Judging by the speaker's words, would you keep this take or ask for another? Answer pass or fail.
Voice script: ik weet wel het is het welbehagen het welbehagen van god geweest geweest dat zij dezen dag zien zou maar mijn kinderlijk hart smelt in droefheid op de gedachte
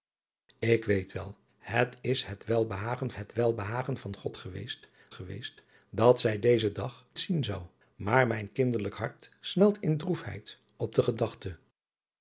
pass